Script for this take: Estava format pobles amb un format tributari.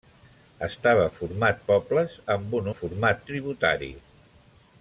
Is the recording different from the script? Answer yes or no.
no